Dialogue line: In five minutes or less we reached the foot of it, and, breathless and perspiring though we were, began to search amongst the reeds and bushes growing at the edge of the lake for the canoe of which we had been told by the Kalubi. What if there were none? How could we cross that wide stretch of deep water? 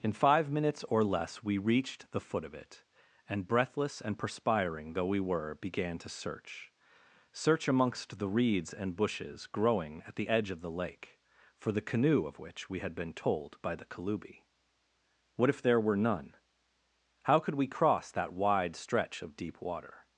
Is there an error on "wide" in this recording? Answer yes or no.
no